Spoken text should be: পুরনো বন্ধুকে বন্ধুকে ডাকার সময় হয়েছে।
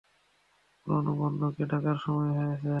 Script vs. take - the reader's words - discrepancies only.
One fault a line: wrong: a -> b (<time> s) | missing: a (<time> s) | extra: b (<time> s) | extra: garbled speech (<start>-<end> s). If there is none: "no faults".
missing: বন্ধুকে (1.6 s)